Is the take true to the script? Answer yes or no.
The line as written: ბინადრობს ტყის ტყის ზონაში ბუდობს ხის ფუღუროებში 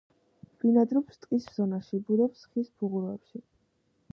no